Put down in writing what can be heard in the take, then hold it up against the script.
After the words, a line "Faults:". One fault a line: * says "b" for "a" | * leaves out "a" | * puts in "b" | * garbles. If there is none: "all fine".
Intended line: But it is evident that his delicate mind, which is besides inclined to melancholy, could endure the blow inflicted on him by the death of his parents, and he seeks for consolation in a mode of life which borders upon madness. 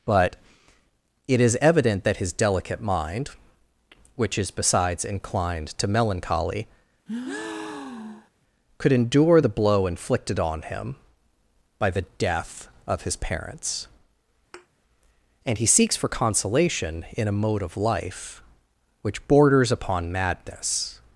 But it is evident that his delicate mind, which is besides inclined to melancholy, could endure the blow inflicted on him by the death of his parents, and he seeks for consolation in a mode of life which borders upon madness.
Faults:
all fine